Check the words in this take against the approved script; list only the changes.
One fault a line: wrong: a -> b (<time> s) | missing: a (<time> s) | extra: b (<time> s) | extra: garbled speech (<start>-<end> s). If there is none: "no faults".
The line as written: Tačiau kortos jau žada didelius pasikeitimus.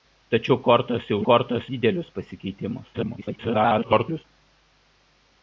wrong: žada -> kortos (1.3 s)
extra: garbled speech (2.9-4.2 s)